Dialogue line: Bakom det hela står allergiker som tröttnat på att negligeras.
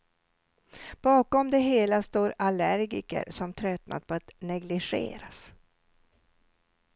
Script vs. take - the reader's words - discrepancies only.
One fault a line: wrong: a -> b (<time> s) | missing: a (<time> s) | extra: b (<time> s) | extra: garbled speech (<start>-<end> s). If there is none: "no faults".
no faults